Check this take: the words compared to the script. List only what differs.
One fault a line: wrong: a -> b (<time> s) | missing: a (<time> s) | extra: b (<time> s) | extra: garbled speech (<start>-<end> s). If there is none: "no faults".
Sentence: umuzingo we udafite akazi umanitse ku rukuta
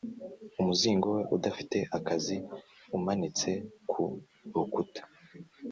no faults